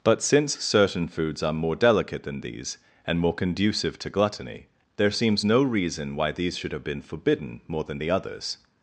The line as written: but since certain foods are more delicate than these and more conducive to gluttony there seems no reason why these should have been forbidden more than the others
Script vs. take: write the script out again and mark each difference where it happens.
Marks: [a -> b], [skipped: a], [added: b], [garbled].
but since certain foods are more delicate than these and more conducive to gluttony there seems no reason why these should have been forbidden more than the others